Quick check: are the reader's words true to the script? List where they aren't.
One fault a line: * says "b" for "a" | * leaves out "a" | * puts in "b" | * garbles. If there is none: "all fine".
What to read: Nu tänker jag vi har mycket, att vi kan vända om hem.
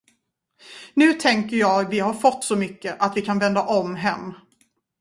* puts in "fått så"